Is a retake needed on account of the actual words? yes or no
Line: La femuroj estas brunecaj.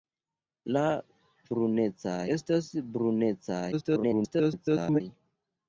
yes